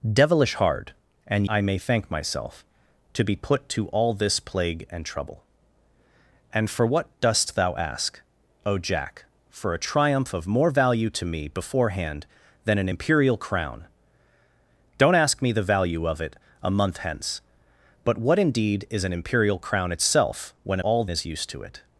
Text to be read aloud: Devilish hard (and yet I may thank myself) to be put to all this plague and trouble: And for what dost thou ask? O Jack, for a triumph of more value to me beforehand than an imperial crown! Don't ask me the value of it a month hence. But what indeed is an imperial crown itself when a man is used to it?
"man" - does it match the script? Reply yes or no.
no